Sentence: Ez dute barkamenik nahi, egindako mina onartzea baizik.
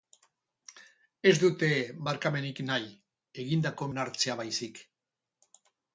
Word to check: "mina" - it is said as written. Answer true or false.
false